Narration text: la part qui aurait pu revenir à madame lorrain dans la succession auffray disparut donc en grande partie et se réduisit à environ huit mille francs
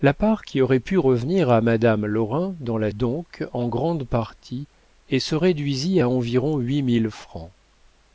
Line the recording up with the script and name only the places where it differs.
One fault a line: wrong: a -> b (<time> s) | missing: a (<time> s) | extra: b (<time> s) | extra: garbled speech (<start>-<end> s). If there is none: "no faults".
missing: succession auffray disparut (2.9 s)